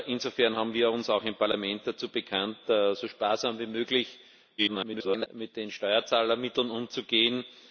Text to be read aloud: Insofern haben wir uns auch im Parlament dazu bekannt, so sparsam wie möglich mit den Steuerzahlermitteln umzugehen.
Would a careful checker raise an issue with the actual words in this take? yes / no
yes